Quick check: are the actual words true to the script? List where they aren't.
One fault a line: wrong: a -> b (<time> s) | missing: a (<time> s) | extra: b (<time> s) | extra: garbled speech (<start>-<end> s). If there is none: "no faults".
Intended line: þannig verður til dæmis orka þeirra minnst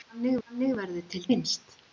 extra: þannig (0.5 s)
missing: dæmis orka þeirra (1.2 s)